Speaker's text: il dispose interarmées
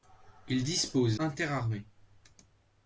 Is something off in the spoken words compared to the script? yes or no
no